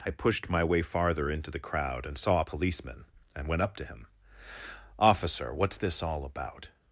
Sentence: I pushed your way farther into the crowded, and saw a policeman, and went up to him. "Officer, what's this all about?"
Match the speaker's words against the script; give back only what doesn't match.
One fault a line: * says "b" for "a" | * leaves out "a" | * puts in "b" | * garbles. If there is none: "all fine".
* says "my" for "your"
* says "crowd" for "crowded"